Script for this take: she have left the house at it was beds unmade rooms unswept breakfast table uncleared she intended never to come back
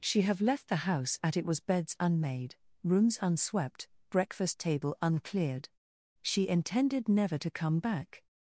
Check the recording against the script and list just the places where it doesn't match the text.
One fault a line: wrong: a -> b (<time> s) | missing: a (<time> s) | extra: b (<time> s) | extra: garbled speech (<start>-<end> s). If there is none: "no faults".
no faults